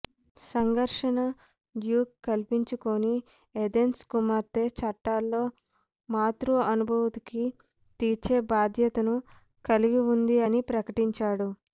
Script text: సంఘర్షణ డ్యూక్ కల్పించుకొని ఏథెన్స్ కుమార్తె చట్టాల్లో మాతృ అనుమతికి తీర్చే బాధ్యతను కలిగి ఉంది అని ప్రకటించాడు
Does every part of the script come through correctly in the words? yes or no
yes